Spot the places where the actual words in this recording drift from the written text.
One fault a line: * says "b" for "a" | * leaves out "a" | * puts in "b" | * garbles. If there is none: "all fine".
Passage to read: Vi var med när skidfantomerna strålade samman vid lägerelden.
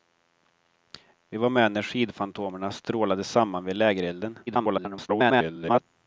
* garbles